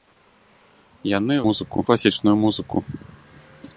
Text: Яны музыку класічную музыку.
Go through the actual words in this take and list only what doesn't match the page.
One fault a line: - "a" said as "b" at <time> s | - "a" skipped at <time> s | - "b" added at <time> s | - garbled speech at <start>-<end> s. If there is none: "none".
none